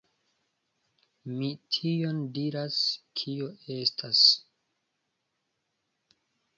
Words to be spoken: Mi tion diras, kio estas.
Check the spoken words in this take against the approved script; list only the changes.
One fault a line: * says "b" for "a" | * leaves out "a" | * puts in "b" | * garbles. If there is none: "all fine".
all fine